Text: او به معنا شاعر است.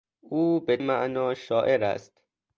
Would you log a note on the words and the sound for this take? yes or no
no